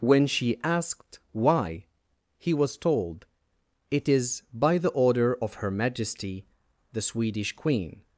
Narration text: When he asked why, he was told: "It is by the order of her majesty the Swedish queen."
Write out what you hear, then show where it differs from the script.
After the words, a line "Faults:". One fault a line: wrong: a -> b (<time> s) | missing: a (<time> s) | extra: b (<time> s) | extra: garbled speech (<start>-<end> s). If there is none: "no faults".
When she asked why, he was told: "It is by the order of her majesty the Swedish queen."
Faults:
wrong: he -> she (0.2 s)